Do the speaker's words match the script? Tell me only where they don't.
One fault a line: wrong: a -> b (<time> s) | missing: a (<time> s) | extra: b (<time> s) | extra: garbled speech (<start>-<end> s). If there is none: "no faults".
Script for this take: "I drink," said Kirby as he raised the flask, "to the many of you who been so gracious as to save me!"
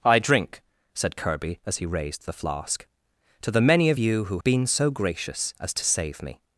no faults